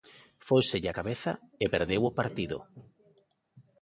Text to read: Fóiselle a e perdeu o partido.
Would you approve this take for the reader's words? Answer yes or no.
no